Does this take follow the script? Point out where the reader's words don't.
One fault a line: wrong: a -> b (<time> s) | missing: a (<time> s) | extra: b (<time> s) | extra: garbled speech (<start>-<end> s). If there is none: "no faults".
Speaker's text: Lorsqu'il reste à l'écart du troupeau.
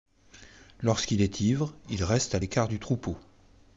extra: est ivre il (1.2 s)